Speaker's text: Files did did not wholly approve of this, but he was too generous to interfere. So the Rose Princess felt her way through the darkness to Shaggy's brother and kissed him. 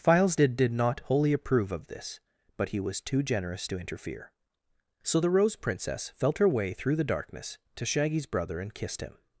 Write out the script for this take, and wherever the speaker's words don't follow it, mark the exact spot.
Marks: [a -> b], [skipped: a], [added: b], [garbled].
Files did did not wholly approve of this, but he was too generous to interfere. So the Rose Princess felt her way through the darkness to Shaggy's brother and kissed him.